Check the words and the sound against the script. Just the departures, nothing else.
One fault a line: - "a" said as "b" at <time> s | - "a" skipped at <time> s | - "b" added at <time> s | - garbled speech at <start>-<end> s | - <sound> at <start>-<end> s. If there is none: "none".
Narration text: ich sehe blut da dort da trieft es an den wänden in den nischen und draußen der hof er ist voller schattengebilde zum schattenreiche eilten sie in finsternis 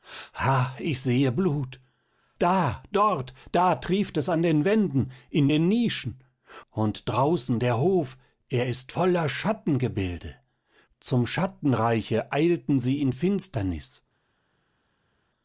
none